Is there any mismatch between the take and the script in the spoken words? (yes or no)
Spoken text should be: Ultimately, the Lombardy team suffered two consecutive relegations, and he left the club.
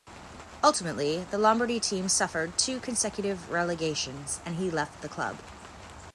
no